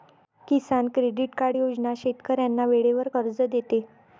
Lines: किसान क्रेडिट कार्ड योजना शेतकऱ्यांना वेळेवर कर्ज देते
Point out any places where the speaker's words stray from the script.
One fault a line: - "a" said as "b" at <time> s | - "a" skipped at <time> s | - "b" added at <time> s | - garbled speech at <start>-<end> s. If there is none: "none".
none